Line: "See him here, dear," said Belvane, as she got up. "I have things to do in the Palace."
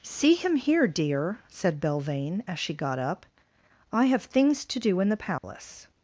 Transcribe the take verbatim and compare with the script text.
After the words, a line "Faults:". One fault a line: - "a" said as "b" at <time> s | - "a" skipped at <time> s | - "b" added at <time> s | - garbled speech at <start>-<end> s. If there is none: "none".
"See him here, dear," said Belvane, as she got up. "I have things to do in the Palace."
Faults:
none